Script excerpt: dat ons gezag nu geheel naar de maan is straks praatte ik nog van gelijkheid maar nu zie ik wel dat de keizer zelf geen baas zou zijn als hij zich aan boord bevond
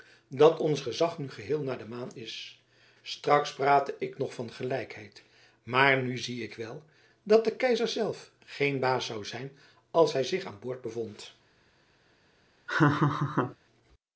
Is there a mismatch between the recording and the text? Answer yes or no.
no